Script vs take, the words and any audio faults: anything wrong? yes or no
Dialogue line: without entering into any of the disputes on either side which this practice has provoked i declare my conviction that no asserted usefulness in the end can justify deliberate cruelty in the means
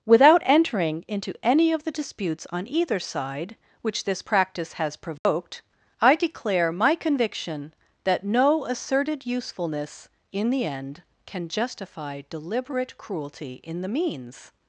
yes